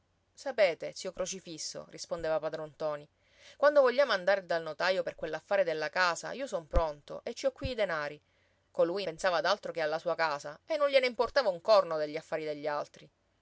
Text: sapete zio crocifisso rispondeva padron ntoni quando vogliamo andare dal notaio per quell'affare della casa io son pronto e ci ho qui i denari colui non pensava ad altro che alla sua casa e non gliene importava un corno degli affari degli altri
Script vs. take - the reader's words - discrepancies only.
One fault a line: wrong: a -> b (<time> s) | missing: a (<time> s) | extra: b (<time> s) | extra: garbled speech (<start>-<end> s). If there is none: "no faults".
missing: non (9.0 s)